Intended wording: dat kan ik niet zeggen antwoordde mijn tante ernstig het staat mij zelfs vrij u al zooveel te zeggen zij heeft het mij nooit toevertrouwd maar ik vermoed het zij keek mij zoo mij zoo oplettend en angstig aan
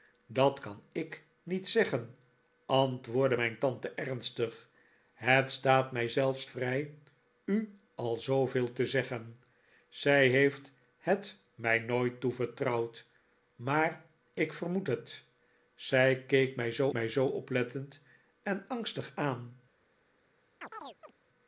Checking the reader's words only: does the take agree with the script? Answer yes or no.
yes